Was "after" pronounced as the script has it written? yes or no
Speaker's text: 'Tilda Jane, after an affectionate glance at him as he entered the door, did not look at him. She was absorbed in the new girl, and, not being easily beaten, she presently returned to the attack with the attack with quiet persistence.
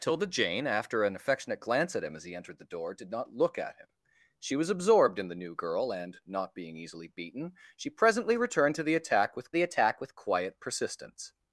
yes